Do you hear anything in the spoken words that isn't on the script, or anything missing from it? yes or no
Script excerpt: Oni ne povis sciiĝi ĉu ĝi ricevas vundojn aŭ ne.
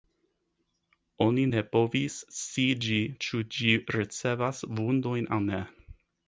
no